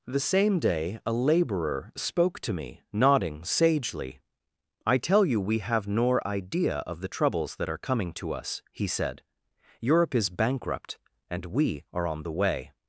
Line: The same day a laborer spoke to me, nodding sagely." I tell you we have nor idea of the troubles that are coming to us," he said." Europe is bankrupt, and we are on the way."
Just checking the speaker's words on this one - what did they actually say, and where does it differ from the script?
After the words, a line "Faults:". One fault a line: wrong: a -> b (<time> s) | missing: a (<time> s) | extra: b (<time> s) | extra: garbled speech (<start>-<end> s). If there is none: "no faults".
The same day a laborer spoke to me, nodding sagely." I tell you we have nor idea of the troubles that are coming to us," he said." Europe is bankrupt, and we are on the way."
Faults:
no faults